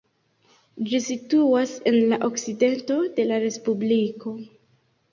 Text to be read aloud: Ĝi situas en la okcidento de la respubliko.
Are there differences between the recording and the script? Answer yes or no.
no